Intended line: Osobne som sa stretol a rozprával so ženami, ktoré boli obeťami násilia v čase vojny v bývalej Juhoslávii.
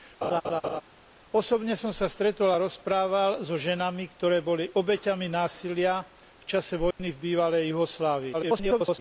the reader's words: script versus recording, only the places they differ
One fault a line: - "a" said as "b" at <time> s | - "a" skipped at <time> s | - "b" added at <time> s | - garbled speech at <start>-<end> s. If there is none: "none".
- garbled speech at 8.3-9.0 s